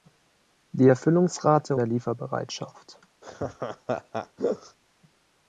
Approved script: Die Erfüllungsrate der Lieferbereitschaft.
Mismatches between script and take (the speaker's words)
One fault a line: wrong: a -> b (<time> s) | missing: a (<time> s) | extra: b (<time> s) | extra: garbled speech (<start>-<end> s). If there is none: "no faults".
no faults